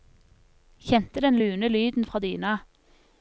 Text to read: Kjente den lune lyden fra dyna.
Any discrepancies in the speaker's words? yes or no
no